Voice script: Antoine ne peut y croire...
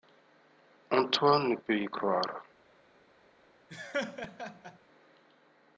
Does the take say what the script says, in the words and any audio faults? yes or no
no